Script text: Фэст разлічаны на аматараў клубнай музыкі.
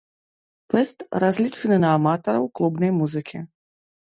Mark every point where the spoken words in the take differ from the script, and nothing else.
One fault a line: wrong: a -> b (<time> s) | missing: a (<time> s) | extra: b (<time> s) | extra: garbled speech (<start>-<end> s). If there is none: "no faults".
no faults